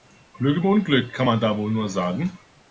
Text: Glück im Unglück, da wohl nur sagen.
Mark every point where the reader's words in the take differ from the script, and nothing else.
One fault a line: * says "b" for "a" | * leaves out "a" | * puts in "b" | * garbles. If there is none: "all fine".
* puts in "kann man"